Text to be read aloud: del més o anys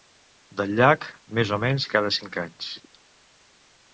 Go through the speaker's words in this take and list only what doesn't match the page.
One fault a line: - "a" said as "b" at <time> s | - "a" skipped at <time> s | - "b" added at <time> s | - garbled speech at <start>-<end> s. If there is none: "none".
- "llac" added at 0.8 s
- "menys cada cinc" added at 1.7 s